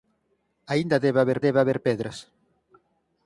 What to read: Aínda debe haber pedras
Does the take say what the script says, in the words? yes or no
no